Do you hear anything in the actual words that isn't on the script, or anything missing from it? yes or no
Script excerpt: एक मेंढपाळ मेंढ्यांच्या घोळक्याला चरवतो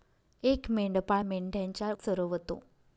yes